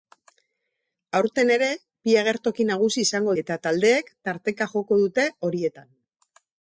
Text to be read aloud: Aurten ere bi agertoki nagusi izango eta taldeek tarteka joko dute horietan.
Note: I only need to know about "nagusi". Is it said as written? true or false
true